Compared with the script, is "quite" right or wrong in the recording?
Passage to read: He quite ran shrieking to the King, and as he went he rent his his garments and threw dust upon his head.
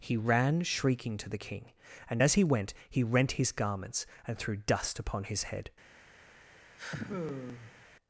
wrong